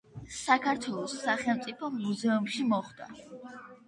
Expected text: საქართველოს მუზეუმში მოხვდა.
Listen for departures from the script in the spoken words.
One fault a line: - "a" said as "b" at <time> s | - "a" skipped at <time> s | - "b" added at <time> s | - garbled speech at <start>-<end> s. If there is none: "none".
- "სახელმწიფო" added at 1.2 s